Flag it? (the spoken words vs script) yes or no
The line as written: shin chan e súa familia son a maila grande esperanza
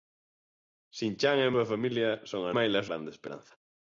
no